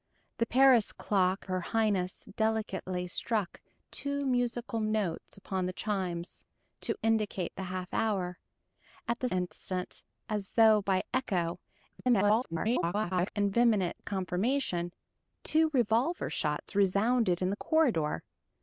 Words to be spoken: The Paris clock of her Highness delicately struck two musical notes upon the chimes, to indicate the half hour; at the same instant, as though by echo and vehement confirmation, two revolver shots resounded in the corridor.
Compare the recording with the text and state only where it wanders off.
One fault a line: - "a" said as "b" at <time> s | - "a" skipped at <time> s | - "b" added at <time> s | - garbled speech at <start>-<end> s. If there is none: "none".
- "of" skipped at 1.4 s
- "same" skipped at 9.3 s
- garbled speech at 11.9-13.3 s